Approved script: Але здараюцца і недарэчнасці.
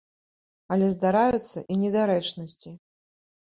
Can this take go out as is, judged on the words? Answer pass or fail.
pass